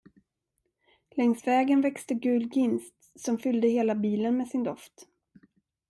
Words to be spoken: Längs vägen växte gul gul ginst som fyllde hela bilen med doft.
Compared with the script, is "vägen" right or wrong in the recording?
right